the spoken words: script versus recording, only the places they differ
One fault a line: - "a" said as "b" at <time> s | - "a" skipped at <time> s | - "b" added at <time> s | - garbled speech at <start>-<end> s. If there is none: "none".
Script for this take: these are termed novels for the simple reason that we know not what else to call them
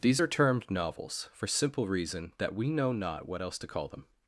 - "the" skipped at 1.5 s